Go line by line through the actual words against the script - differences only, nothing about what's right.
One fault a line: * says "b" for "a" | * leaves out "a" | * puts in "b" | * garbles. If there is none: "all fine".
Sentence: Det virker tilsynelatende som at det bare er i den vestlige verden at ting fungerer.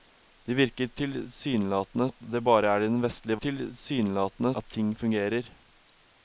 * leaves out "som"
* says "tilsynelatende" for "verden"